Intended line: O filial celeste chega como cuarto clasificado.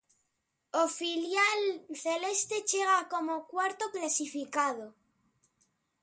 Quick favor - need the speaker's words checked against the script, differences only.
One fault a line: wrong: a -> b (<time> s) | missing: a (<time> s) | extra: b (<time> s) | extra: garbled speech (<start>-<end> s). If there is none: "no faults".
no faults